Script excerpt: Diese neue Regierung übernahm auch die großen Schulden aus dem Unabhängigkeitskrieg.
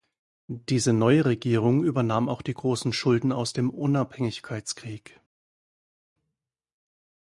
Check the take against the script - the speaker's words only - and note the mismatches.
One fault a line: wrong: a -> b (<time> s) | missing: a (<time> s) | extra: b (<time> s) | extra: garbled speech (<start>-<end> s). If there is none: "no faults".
no faults